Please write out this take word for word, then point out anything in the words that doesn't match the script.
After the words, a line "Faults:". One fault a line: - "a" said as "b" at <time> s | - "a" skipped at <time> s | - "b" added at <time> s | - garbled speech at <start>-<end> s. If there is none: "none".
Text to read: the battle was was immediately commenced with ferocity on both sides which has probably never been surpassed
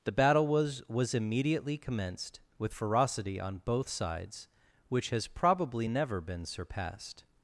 the battle was was immediately commenced with ferocity on both sides which has probably never been surpassed
Faults:
none